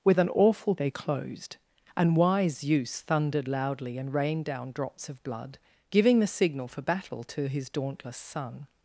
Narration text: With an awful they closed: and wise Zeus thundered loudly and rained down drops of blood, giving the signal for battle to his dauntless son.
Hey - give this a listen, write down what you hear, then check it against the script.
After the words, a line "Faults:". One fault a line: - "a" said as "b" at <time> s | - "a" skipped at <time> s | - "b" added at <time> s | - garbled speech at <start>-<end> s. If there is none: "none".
With an awful they closed: and wise Zeus thundered loudly and rained down drops of blood, giving the signal for battle to his dauntless son.
Faults:
none